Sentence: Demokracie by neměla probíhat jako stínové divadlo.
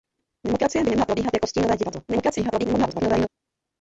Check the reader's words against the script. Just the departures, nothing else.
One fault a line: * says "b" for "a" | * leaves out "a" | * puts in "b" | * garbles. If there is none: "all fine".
* garbles